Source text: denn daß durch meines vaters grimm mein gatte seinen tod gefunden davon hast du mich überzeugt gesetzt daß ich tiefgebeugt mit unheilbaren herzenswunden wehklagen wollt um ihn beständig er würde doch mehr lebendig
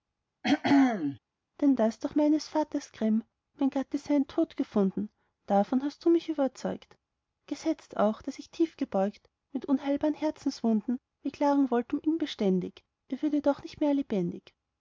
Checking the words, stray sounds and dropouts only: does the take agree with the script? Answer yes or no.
no